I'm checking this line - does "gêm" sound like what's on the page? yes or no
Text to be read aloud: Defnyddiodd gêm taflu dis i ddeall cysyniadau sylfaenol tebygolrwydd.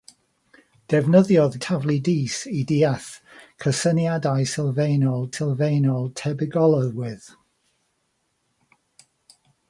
no